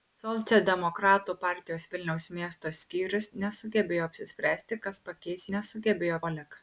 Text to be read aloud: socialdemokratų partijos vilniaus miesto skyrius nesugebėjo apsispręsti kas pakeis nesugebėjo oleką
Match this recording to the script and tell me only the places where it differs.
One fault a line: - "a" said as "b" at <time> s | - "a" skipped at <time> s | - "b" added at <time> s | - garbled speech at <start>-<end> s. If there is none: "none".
none